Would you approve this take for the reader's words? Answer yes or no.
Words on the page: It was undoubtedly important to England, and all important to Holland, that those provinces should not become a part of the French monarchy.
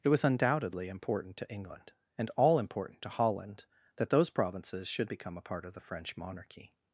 no